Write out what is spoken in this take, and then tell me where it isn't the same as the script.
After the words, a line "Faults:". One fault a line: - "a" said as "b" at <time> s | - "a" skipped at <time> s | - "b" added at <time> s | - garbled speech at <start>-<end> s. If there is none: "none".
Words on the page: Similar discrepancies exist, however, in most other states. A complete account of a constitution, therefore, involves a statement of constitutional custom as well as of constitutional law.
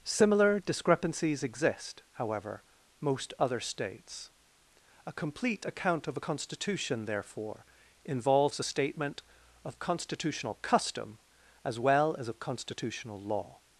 Similar discrepancies exist, however, most other states. A complete account of a constitution, therefore, involves a statement of constitutional custom as well as of constitutional law.
Faults:
- "in" skipped at 2.6 s